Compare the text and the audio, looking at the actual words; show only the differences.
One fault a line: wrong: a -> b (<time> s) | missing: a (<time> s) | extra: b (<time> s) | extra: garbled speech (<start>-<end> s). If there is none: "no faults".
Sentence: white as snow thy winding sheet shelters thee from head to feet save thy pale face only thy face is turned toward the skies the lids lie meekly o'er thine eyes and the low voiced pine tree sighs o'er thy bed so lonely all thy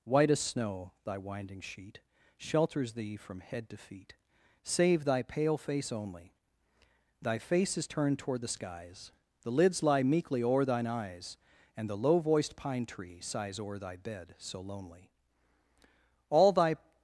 no faults